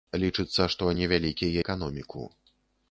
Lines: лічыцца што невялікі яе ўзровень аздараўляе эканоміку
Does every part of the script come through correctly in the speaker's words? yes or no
no